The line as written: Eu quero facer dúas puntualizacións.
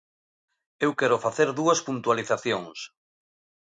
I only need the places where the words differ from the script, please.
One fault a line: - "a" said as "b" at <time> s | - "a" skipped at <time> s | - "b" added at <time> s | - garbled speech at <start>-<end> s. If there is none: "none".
none